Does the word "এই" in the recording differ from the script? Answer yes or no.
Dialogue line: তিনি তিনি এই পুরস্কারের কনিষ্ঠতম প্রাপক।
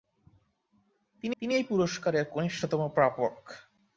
no